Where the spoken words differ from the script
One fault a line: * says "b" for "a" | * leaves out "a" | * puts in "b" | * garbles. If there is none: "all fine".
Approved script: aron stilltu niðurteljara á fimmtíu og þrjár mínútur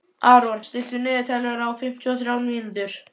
all fine